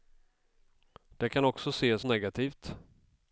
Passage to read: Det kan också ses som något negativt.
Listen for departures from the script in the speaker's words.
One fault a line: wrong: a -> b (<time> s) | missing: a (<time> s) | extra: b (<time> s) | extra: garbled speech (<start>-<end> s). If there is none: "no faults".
missing: som något (2.0 s)